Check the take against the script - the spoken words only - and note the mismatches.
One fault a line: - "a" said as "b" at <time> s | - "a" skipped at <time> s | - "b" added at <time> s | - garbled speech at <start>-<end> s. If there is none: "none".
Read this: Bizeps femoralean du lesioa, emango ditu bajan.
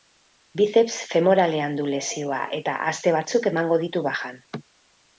- "eta aste batzuk" added at 2.6 s